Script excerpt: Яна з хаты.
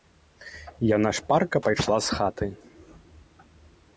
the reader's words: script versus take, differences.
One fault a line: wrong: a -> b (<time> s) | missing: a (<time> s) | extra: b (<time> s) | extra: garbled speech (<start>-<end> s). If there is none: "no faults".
extra: шпарка пайшла (1.2 s)